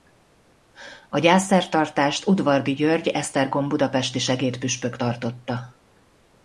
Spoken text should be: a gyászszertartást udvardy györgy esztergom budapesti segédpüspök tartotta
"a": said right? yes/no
yes